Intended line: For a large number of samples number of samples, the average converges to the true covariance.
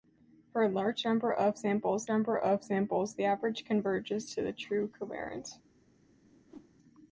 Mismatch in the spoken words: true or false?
false